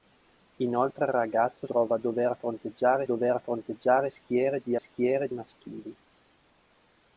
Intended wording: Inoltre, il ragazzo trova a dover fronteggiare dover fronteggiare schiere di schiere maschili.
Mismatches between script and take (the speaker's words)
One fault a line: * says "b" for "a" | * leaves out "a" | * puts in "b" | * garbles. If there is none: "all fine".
all fine